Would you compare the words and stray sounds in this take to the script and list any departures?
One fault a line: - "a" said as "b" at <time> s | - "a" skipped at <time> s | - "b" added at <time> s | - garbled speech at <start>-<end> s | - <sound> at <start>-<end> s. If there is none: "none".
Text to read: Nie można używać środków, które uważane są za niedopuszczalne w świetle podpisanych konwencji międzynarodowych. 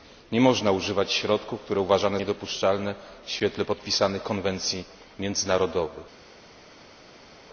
- "są za" skipped at 2.2 s